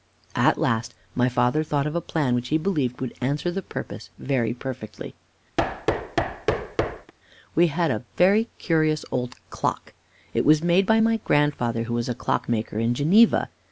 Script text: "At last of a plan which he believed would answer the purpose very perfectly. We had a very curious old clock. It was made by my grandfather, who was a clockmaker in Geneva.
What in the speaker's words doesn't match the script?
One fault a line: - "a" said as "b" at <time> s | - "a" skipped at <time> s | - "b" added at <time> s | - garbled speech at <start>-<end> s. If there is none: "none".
- "my father thought" added at 1.1 s